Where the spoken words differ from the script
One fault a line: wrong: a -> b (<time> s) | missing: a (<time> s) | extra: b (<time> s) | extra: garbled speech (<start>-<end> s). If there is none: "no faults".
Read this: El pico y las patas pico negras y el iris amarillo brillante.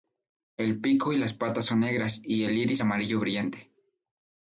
wrong: pico -> son (1.6 s)